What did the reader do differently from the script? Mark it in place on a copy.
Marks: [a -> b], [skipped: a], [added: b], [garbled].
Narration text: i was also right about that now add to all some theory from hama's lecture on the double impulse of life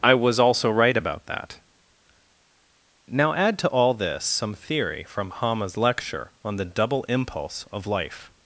i was also right about that now add to all [added: this] some theory from hama's lecture on the double impulse of life